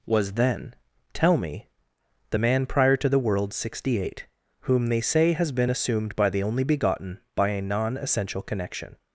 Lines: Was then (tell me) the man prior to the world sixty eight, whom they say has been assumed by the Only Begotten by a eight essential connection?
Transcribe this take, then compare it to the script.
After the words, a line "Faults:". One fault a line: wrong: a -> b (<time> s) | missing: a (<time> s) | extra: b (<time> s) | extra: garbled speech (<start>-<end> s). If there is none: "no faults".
Was then (tell me) the man prior to the world sixty eight, whom they say has been assumed by the Only Begotten by a non essential connection?
Faults:
wrong: eight -> non (7.6 s)